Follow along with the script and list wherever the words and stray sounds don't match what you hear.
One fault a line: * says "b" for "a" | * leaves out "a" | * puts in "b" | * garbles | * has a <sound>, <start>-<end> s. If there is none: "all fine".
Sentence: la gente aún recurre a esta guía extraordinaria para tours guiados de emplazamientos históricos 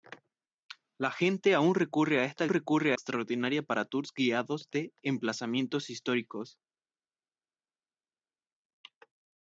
* says "recurre" for "guía"